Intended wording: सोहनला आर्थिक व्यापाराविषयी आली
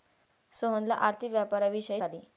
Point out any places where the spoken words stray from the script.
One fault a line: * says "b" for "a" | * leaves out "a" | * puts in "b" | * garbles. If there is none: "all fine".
all fine